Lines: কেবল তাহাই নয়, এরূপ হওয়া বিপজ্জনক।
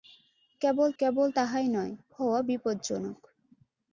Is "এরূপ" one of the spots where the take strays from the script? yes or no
yes